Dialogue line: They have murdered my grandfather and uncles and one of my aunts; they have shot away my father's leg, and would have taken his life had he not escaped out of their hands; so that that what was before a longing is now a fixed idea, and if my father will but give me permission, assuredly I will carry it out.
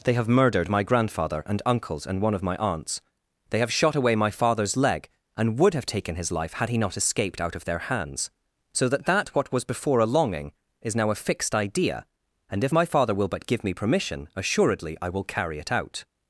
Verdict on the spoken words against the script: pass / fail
pass